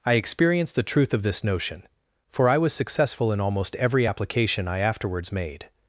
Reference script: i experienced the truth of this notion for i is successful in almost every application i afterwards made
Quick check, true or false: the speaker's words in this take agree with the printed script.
false